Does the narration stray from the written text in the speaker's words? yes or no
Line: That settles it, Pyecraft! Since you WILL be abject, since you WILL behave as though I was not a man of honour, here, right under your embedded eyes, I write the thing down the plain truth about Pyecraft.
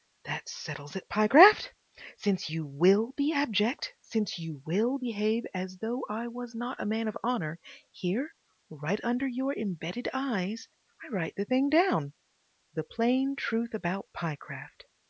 no